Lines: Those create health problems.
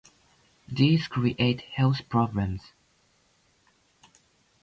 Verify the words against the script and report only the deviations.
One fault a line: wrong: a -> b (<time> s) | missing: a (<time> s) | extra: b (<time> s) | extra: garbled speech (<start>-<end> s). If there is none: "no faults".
wrong: Those -> These (0.7 s)